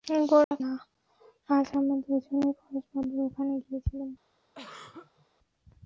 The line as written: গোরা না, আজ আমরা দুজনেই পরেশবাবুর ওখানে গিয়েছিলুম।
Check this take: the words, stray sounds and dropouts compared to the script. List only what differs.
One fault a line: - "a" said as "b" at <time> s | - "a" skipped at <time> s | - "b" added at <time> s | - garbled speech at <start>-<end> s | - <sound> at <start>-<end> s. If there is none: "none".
- dropout at 0.4-0.5 s
- throat clearing at 4.5-5.3 s